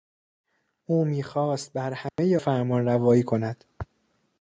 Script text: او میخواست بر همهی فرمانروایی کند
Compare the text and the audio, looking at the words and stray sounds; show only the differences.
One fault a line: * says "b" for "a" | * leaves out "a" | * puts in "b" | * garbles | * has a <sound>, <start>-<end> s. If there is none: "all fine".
* has a dropout, 2.1-2.2 s